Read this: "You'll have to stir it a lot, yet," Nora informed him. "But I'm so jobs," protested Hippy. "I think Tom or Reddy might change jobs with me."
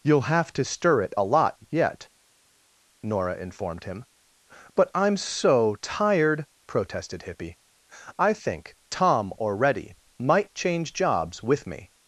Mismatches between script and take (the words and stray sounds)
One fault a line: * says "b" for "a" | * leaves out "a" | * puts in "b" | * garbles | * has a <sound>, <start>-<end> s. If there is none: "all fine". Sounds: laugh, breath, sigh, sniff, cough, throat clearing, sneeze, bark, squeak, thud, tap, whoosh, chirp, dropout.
* says "tired" for "jobs"